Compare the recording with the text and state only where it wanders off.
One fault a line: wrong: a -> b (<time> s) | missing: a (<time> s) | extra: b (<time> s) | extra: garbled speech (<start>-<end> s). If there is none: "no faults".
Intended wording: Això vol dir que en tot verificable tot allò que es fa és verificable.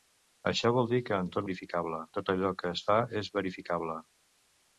no faults